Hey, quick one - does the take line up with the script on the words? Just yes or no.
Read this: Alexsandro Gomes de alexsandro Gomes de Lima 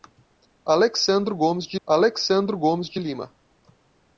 yes